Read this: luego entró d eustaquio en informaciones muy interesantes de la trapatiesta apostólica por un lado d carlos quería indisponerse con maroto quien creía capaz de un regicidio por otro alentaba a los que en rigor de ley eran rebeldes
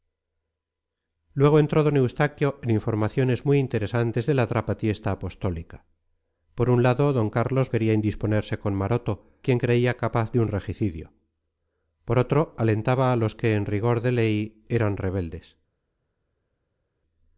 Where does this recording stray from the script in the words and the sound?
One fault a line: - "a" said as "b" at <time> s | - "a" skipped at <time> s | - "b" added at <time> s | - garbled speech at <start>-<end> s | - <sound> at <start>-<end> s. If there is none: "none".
none